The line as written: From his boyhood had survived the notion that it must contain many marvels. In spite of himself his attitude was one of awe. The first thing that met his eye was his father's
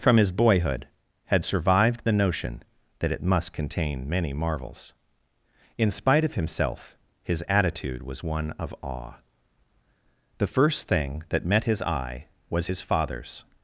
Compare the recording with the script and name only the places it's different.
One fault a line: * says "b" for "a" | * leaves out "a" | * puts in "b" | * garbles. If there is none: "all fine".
all fine